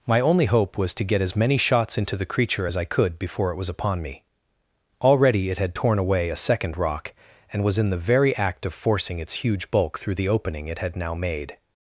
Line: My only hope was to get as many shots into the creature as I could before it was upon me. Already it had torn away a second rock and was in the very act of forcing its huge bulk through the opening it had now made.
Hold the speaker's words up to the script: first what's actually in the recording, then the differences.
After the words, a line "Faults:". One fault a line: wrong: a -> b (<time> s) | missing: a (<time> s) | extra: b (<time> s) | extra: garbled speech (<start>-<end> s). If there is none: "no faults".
My only hope was to get as many shots into the creature as I could before it was upon me. Already it had torn away a second rock and was in the very act of forcing its huge bulk through the opening it had now made.
Faults:
no faults